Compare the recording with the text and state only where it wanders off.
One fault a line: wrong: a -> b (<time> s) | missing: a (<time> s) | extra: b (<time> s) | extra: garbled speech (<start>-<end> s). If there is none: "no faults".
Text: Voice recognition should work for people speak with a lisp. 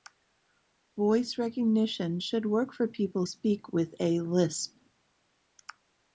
no faults